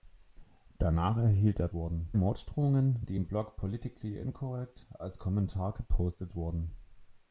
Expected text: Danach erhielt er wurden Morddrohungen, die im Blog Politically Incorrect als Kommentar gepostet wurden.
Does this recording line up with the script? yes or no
yes